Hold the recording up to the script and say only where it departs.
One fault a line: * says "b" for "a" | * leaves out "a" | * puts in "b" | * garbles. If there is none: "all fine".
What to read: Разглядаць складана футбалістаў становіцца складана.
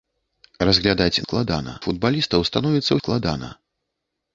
all fine